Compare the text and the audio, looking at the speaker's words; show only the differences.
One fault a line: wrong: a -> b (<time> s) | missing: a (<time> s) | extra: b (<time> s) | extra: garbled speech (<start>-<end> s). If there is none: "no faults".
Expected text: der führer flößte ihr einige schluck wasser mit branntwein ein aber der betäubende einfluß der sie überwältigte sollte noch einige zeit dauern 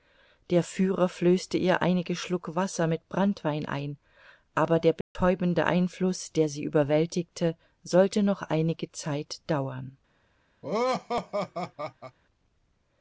no faults